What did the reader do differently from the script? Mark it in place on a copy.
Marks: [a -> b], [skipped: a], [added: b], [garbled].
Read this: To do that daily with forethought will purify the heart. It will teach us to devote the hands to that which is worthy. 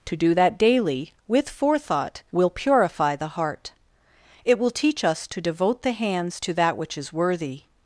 To do that daily with forethought will purify the heart. It will teach us to devote the hands to that which is worthy.